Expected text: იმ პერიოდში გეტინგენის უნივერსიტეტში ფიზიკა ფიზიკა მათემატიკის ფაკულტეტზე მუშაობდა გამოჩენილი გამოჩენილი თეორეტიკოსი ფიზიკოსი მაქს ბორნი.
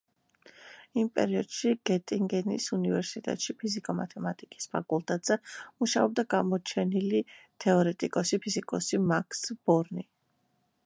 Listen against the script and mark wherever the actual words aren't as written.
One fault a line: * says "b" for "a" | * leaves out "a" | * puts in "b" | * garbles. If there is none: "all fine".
* leaves out "ფიზიკა"
* leaves out "გამოჩენილი"